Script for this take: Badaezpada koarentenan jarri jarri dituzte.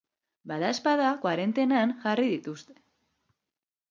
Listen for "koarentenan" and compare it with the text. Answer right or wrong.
right